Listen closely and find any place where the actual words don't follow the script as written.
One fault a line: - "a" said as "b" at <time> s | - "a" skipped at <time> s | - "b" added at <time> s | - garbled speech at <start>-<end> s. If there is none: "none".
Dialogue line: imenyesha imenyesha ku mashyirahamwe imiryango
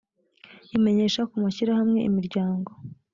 - "imenyesha" skipped at 1.2 s